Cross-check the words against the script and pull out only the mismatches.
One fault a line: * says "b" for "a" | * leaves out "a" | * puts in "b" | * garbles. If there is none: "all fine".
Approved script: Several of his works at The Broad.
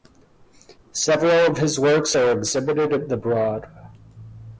* puts in "are exhibited"